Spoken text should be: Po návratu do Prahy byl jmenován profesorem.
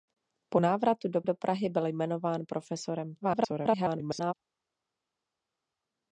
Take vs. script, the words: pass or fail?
fail